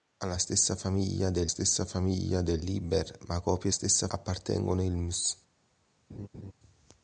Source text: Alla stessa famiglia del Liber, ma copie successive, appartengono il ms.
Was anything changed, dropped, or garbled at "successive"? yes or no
yes